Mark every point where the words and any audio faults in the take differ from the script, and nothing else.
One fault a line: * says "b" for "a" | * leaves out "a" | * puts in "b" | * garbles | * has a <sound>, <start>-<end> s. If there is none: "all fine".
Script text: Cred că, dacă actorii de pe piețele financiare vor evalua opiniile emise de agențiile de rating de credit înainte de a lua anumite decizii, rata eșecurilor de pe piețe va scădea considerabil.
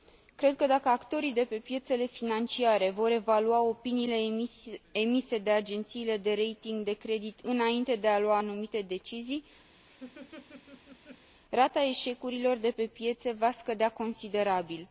* has a laugh, 9.8-11.3 s